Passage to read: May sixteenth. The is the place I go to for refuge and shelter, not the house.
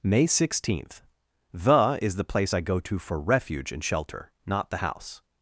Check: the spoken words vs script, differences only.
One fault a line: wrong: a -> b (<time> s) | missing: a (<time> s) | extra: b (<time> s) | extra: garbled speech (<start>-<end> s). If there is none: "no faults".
no faults